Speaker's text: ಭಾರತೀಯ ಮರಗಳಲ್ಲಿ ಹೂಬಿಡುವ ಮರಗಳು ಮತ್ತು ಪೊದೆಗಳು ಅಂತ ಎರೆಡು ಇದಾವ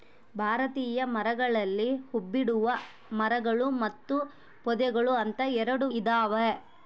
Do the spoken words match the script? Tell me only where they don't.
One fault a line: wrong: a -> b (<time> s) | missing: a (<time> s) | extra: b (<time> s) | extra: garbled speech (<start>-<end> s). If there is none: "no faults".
no faults